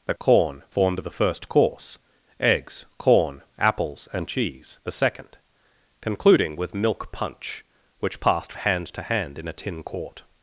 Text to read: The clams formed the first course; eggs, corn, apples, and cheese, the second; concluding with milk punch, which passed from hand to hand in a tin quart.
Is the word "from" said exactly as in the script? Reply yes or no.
no